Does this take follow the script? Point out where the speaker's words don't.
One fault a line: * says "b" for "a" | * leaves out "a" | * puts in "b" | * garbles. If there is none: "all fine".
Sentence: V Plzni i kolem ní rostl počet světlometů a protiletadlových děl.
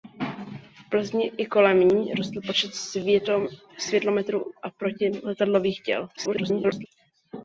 * garbles